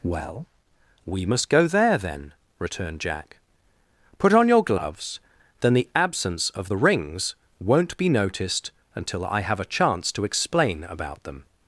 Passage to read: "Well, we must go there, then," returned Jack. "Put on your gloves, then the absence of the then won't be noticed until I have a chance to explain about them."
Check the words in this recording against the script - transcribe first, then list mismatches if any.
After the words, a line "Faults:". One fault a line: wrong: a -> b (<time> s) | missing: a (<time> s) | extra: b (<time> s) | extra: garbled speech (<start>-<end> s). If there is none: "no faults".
"Well, we must go there, then," returned Jack. "Put on your gloves, then the absence of the rings won't be noticed until I have a chance to explain about them."
Faults:
wrong: then -> rings (6.8 s)